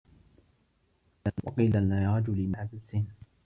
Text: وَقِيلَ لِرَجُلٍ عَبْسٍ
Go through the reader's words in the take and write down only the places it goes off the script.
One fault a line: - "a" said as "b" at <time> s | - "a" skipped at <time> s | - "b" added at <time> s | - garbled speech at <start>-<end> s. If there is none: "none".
none